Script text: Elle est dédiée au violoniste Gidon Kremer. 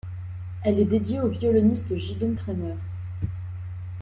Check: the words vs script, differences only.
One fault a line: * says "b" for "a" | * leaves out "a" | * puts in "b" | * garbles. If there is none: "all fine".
all fine